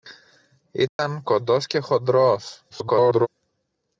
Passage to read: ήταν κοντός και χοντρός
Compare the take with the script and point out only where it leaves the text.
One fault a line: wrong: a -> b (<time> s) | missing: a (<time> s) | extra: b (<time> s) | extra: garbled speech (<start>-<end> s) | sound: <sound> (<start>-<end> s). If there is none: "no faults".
sound: dropout (0.9-1.0 s)
extra: garbled speech (2.7-3.3 s)